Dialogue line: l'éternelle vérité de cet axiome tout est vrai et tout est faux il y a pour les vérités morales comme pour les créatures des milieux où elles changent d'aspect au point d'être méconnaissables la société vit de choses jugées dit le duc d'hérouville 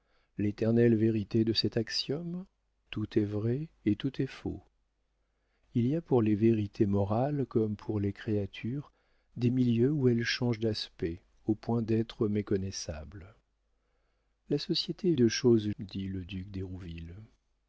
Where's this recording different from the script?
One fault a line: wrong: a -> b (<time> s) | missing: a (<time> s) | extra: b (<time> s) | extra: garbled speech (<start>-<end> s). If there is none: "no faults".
missing: vit (15.1 s)
missing: jugées (15.7 s)